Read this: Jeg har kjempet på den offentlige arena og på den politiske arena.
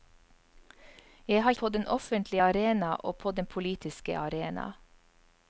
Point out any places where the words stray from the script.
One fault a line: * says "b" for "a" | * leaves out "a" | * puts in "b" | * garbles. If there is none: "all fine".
* leaves out "kjempet"